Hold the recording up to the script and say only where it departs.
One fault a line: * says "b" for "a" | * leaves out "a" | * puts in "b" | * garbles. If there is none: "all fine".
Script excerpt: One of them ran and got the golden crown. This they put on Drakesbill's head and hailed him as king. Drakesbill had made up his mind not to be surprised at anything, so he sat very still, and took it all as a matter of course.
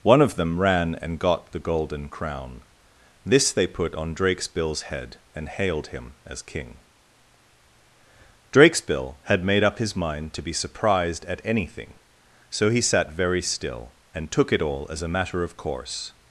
* leaves out "not"